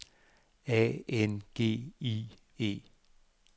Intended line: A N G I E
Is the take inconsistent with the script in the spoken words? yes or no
no